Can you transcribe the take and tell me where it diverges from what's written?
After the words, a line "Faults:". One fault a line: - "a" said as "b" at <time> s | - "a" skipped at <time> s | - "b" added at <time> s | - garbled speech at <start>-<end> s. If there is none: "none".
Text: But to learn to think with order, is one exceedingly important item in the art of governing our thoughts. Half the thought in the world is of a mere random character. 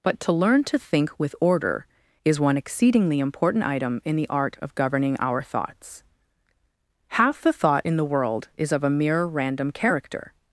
But to learn to think with order, is one exceedingly important item in the art of governing our thoughts. Half the thought in the world is of a mere random character.
Faults:
none